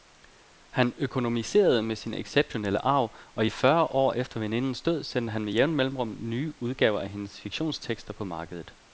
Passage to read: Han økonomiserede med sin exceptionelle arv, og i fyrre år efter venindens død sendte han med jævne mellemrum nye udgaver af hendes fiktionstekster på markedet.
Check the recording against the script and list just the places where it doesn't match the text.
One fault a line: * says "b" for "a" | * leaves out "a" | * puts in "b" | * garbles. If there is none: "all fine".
all fine